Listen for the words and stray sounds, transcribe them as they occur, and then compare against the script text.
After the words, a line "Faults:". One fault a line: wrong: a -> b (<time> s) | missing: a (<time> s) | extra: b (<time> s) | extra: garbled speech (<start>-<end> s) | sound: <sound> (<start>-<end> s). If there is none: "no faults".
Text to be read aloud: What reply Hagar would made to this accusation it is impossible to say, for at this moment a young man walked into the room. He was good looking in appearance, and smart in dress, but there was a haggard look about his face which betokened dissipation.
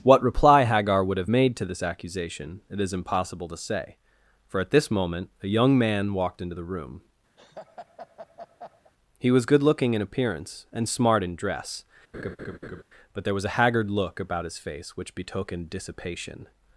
What reply Hagar would have made to this accusation it is impossible to say, for at this moment a young man walked into the room. He was good looking in appearance, and smart in dress, but there was a haggard look about his face which betokened dissipation.
Faults:
extra: have (1.2 s)
sound: laugh (7.4-8.9 s)
sound: laugh (12.1-12.8 s)